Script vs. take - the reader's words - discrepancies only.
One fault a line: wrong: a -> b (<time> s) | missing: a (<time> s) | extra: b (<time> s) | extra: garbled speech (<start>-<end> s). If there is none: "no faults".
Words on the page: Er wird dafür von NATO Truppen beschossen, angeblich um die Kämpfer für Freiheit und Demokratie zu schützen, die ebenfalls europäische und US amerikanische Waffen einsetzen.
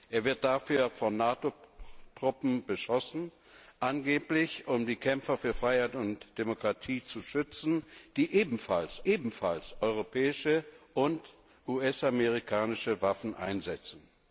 extra: ebenfalls (9.1 s)